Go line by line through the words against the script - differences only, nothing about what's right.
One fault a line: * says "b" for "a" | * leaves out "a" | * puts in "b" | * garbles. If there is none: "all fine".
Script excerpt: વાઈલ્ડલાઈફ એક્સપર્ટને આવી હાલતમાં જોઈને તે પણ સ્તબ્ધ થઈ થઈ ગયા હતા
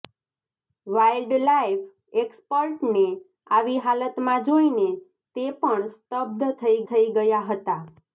all fine